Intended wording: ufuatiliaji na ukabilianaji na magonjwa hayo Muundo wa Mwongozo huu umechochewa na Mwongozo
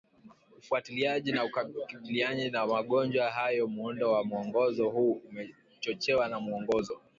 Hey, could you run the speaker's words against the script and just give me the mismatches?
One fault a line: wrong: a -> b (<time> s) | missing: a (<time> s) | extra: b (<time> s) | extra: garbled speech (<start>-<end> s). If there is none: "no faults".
no faults